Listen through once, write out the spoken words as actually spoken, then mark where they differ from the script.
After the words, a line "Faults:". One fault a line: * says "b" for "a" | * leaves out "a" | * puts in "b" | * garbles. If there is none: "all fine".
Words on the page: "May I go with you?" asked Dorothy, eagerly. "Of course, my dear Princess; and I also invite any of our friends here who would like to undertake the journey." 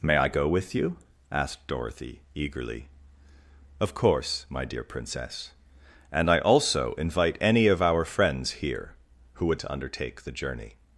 "May I go with you?" asked Dorothy, eagerly. "Of course, my dear Princess; and I also invite any of our friends here who would to undertake the journey."
Faults:
* leaves out "like"